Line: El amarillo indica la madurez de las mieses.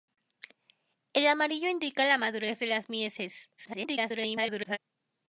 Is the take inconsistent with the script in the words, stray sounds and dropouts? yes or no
yes